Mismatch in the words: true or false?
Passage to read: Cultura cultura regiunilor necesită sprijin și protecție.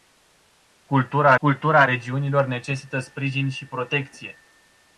false